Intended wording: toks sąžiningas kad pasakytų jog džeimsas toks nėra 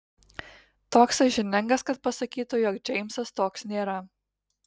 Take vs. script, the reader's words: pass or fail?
pass